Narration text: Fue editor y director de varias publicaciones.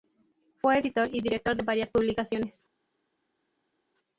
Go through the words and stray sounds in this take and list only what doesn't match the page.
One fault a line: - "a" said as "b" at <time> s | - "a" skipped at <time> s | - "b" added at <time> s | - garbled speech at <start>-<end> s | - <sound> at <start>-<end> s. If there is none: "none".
none